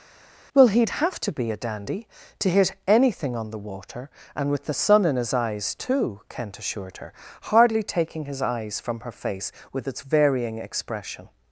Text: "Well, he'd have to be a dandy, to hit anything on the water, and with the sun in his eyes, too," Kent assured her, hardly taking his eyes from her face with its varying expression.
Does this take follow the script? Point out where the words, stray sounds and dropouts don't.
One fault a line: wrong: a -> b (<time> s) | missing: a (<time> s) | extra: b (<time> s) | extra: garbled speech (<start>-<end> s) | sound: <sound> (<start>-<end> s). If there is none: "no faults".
no faults